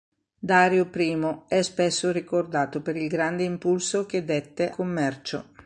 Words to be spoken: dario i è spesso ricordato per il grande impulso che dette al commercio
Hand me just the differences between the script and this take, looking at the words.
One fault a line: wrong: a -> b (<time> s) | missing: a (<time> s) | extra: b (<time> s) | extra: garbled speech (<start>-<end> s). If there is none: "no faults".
missing: al (4.7 s)